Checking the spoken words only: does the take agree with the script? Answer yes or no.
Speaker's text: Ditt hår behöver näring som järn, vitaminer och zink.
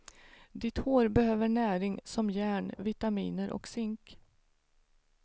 yes